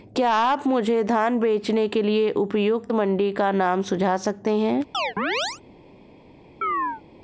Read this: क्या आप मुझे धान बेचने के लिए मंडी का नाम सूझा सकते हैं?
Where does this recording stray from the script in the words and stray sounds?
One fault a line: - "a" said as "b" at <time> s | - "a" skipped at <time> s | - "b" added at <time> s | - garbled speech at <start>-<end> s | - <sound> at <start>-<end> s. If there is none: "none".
- "उपयुक्त" added at 2.4 s
- chirp at 4.9-5.6 s
- chirp at 6.6-7.0 s